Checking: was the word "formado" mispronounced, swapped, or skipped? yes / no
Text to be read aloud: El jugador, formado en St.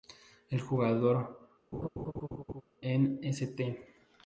yes